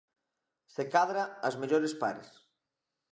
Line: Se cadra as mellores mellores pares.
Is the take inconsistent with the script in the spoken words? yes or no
yes